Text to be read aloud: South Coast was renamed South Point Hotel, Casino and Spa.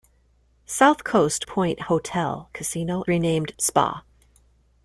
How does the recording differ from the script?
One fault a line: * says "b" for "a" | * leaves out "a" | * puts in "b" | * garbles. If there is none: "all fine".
* leaves out "was renamed South"
* says "renamed" for "and"